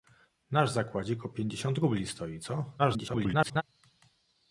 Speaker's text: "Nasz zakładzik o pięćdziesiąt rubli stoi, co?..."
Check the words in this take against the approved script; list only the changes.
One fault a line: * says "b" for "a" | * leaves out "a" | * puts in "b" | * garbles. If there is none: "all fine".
* garbles